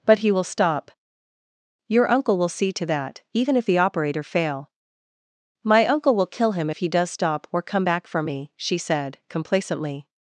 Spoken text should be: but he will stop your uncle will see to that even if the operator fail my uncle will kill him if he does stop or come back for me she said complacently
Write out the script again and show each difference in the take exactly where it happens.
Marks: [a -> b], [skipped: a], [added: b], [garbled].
but he will stop your uncle will see to that even if the operator fail my uncle will kill him if he does stop or come back for me she said complacently